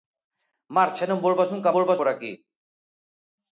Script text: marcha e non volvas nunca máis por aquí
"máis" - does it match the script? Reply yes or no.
no